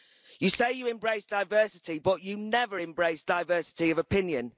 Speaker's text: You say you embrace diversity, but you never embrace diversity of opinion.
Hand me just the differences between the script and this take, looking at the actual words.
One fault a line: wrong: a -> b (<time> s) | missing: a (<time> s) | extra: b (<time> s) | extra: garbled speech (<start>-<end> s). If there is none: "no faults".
no faults